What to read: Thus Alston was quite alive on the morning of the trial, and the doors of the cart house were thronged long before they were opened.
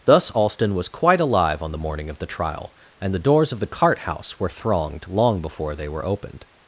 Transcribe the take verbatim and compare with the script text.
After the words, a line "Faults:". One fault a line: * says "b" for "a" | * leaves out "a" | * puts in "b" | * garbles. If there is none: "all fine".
Thus Alston was quite alive on the morning of the trial, and the doors of the cart house were thronged long before they were opened.
Faults:
all fine